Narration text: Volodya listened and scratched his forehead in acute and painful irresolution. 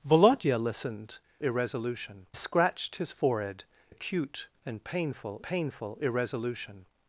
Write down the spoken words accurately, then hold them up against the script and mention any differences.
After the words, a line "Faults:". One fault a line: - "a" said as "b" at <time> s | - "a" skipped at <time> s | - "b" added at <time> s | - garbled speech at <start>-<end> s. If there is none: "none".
Volodya listened irresolution scratched his forehead acute and painful painful irresolution.
Faults:
- "and" said as "irresolution" at 1.4 s
- "in" skipped at 3.6 s
- "painful" added at 5.4 s